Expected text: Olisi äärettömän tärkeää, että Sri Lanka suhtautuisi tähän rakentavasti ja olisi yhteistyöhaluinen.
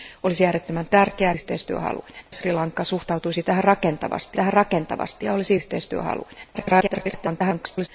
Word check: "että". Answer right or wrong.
wrong